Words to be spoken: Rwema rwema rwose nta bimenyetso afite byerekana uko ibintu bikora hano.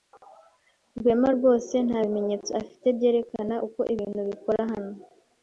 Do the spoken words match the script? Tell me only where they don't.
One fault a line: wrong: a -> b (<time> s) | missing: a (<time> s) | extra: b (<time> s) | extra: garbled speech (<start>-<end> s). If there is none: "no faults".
missing: rwema (1.3 s)